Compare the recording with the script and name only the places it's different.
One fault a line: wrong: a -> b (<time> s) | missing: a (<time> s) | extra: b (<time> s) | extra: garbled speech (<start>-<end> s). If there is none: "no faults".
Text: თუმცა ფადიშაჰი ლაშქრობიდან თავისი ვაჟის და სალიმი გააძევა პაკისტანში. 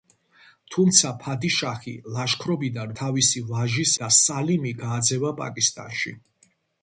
no faults